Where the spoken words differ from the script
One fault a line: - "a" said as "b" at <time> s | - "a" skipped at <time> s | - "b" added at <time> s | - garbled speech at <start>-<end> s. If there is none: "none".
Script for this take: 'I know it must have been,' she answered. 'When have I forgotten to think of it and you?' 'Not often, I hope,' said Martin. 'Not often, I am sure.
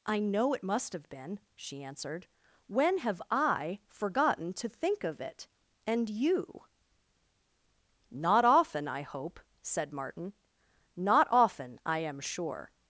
none